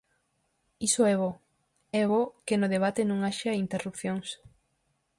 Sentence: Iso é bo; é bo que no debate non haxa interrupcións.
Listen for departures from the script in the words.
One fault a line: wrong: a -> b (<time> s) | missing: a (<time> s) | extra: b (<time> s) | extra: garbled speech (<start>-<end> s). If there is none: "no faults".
no faults